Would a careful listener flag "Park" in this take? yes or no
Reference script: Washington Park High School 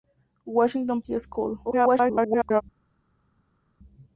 yes